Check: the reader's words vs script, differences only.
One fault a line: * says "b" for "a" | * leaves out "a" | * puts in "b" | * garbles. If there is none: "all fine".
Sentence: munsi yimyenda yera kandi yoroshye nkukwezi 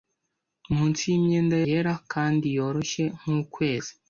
all fine